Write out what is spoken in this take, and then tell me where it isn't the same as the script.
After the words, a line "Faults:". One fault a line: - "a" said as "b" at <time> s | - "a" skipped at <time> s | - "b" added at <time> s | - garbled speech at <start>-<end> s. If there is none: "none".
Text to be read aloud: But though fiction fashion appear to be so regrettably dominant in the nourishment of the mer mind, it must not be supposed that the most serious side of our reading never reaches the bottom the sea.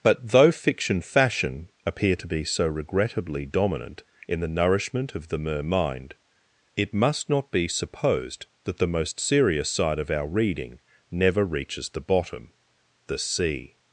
But though fiction fashion appear to be so regrettably dominant in the nourishment of the mer mind, it must not be supposed that the most serious side of our reading never reaches the bottom the sea.
Faults:
none